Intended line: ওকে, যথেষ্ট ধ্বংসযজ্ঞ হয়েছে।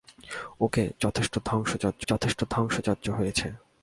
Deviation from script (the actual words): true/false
true